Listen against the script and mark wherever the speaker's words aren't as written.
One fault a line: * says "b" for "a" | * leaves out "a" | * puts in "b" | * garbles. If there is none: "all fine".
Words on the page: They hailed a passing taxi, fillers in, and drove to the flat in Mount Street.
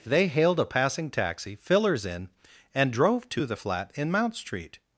all fine